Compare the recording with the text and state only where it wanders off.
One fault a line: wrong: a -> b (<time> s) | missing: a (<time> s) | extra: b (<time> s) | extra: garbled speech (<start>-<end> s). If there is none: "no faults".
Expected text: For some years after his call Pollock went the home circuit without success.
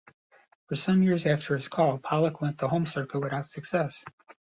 no faults